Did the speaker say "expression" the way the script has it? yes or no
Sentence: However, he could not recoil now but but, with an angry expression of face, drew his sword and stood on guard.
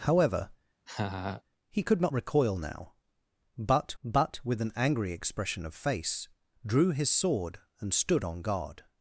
yes